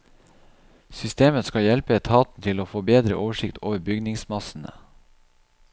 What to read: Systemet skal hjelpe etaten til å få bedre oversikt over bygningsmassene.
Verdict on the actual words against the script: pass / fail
pass